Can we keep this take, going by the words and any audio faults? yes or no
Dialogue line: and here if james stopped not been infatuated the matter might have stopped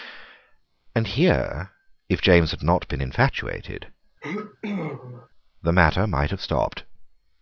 no